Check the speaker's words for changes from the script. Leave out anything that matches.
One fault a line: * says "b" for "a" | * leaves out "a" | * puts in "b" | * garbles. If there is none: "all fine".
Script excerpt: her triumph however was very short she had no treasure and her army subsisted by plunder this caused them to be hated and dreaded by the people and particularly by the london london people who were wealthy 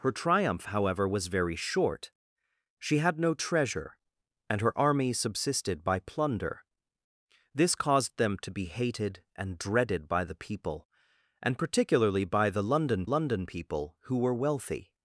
all fine